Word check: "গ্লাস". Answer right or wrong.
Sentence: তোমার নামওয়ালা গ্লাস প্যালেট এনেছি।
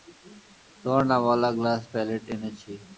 right